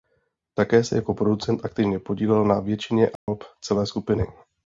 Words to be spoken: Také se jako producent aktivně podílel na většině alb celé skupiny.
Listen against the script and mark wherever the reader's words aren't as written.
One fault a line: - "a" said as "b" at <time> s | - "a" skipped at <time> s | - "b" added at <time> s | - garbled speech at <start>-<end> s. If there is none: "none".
none